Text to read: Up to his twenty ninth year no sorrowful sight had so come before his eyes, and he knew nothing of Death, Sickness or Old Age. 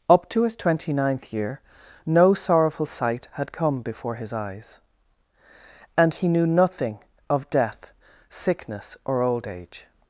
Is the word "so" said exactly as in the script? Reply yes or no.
no